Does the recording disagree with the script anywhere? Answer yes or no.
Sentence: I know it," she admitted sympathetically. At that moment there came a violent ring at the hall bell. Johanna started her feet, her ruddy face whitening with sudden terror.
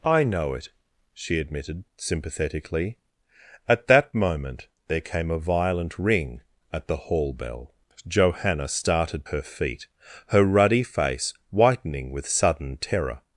no